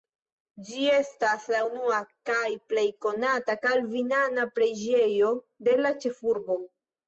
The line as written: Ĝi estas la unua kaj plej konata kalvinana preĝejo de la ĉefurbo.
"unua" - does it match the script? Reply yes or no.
yes